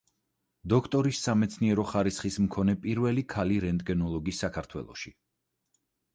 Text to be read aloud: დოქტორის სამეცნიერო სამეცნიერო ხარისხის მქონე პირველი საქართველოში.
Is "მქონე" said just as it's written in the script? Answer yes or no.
yes